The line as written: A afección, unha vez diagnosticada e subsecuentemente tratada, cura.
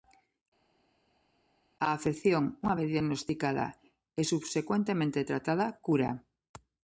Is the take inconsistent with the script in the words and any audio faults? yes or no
no